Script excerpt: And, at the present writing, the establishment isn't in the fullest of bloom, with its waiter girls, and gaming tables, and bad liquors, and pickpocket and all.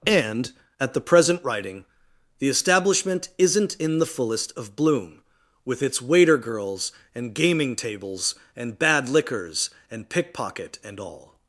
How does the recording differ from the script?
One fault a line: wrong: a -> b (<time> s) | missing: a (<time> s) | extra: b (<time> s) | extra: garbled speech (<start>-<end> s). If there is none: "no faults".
no faults